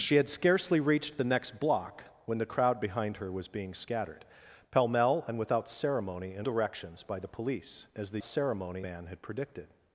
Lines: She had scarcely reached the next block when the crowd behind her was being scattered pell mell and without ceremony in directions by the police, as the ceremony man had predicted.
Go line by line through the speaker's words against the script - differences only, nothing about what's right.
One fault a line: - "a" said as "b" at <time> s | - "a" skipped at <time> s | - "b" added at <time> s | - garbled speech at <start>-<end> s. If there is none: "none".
none